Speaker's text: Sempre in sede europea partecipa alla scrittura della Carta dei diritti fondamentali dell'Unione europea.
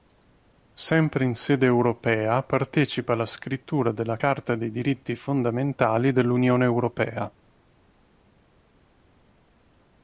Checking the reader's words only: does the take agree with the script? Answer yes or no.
yes